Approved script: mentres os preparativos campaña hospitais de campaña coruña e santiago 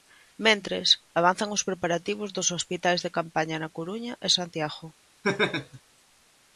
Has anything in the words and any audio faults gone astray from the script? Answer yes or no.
yes